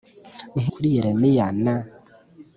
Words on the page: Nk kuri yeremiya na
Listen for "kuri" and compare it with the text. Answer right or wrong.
right